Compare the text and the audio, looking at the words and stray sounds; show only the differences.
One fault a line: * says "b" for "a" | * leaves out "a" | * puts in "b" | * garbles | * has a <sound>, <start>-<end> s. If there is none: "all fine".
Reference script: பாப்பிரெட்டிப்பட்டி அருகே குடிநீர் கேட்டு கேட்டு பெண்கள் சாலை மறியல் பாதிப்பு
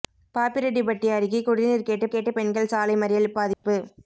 * has a dropout, 3.5-3.6 s